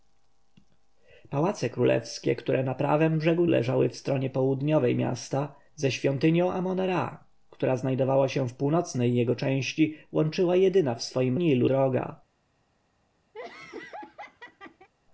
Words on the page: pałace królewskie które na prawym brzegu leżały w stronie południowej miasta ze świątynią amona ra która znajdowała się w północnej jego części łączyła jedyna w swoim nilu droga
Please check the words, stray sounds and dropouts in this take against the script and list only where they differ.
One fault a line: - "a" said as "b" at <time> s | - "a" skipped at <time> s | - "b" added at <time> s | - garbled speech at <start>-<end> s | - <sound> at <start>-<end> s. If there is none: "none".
- laugh at 13.3-14.9 s